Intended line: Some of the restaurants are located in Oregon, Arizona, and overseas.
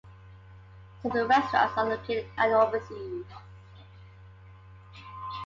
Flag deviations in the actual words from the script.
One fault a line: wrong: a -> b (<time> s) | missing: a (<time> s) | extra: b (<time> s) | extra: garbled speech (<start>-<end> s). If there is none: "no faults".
missing: of (1.1 s)
missing: in Oregon Arizona (2.3 s)